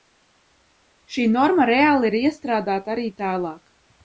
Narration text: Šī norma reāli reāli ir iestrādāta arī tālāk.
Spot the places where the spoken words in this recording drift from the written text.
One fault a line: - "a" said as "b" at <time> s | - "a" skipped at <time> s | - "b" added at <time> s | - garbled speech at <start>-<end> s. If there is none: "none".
- "reāli" skipped at 2.1 s